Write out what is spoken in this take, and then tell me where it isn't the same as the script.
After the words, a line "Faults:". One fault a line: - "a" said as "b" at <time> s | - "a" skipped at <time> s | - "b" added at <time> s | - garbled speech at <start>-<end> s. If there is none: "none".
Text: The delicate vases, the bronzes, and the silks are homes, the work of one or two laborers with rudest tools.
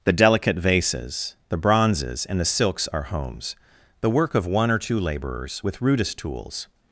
The delicate vases, the bronzes, and the silks are homes, the work of one or two laborers with rudest tools.
Faults:
none